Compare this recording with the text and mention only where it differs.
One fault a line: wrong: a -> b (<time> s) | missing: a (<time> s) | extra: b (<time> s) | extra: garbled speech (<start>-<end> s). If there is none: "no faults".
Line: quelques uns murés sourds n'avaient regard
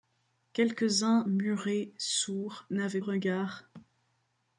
no faults